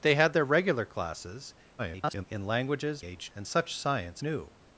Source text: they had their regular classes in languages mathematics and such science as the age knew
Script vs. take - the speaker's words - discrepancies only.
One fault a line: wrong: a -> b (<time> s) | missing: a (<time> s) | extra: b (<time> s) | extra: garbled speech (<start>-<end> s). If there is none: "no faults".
extra: garbled speech (1.8-2.3 s)
wrong: mathematics -> age (3.0 s)
missing: as the age (4.2 s)